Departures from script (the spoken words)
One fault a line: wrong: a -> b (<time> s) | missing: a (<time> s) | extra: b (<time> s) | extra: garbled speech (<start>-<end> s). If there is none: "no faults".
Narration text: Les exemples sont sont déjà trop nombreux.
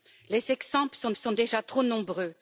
no faults